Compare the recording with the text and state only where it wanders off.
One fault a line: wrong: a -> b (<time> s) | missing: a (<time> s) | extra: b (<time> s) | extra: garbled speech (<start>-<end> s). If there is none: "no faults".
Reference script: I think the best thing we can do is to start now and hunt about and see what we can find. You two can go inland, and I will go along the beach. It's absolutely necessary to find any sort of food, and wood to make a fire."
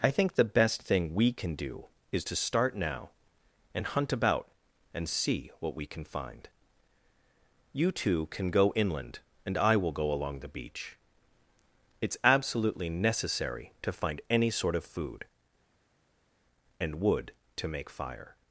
missing: a (17.9 s)